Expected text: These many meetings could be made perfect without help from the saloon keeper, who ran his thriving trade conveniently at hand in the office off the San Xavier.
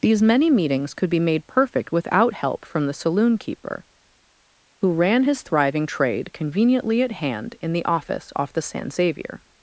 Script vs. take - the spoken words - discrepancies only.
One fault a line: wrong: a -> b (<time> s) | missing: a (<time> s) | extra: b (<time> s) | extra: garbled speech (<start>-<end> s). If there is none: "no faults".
no faults